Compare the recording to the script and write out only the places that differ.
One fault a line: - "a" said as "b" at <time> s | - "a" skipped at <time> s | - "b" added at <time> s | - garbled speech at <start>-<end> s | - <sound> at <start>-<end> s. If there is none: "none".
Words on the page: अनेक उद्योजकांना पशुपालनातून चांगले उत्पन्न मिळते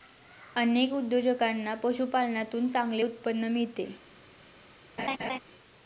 - laugh at 5.0-5.4 s